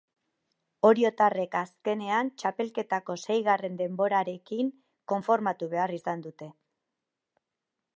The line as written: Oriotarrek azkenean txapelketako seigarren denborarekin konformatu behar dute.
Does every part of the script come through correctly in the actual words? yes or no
no